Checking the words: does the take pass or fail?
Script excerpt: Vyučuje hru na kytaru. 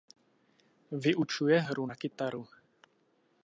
pass